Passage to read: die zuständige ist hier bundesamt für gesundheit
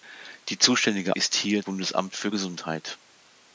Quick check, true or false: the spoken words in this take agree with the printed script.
true